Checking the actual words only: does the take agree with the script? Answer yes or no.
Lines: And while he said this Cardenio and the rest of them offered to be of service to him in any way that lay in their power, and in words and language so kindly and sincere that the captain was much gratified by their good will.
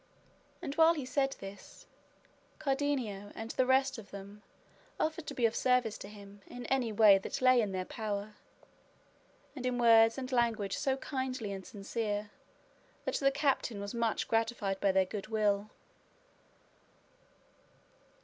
yes